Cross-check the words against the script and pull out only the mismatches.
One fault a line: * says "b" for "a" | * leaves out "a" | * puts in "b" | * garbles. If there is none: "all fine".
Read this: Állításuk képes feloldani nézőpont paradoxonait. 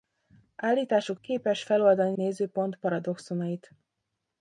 all fine